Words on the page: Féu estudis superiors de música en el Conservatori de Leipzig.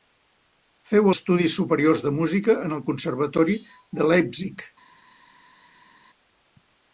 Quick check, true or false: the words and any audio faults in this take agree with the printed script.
true